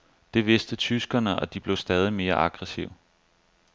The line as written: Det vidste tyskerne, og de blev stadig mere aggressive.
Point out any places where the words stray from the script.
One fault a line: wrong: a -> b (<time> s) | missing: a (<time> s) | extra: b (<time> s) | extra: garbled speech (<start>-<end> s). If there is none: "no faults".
no faults